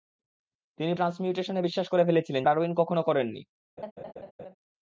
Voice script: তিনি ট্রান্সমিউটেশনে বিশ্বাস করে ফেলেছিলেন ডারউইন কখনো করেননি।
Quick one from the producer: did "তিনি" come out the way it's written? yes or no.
yes